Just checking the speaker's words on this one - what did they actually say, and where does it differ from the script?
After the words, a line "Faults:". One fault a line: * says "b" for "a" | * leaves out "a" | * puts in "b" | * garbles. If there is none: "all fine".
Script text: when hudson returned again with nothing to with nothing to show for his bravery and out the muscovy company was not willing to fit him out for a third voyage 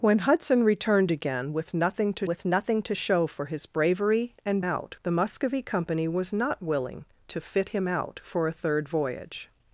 when hudson returned again with nothing to with nothing to show for his bravery and out the muscovy company was not willing to fit him out for a third voyage
Faults:
all fine